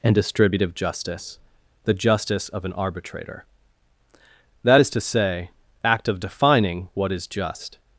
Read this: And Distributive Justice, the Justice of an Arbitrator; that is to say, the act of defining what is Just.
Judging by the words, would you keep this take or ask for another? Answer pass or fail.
fail